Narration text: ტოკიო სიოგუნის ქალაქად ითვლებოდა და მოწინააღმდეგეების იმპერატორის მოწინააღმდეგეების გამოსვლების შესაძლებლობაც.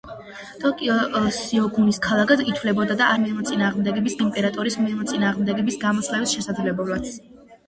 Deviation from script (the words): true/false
false